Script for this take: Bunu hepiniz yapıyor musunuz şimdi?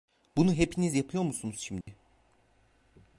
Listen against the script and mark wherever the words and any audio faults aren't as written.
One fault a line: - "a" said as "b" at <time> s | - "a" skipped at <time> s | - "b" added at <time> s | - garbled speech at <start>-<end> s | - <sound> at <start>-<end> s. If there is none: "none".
- dropout at 1.8-1.9 s